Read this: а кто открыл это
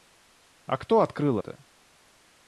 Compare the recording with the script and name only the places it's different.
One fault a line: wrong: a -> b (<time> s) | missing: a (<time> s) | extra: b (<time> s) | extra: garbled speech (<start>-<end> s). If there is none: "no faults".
no faults